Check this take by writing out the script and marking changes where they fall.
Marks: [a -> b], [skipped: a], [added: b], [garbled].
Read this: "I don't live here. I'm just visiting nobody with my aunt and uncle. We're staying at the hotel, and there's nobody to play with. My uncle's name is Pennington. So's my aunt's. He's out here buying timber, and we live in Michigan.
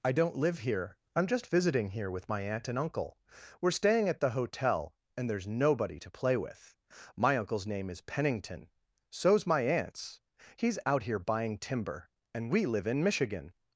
"I don't live here. I'm just visiting [nobody -> here] with my aunt and uncle. We're staying at the hotel, and there's nobody to play with. My uncle's name is Pennington. So's my aunt's. He's out here buying timber, and we live in Michigan.